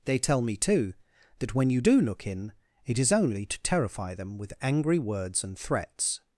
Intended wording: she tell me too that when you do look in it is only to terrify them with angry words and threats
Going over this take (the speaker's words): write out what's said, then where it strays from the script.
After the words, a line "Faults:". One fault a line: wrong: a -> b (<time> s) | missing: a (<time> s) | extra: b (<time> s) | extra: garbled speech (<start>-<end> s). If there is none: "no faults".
they tell me too that when you do look in it is only to terrify them with angry words and threats
Faults:
wrong: she -> they (0.1 s)